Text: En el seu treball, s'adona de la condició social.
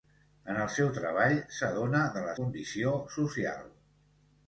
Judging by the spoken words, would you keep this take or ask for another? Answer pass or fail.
pass